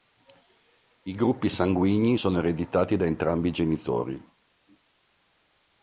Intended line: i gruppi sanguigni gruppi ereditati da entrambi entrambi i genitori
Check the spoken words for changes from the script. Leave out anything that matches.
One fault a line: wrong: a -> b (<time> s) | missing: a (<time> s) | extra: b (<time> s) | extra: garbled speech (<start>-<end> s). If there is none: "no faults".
wrong: gruppi -> sono (2.1 s)
missing: entrambi (3.5 s)